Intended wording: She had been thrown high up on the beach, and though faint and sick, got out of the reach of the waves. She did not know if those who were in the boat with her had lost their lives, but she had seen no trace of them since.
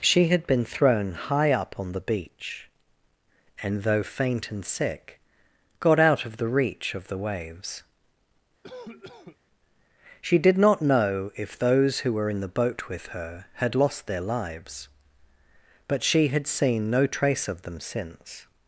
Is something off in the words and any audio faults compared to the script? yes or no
yes